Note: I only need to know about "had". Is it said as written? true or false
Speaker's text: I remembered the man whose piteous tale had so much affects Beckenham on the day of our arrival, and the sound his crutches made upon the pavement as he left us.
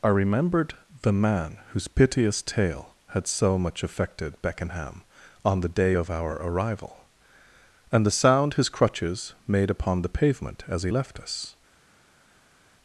true